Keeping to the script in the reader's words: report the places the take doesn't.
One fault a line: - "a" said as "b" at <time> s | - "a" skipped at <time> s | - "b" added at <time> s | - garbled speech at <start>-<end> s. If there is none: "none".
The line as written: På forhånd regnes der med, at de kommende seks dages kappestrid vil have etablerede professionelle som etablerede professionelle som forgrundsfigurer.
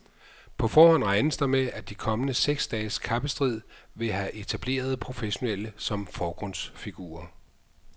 - "etablerede professionelle som" skipped at 6.1 s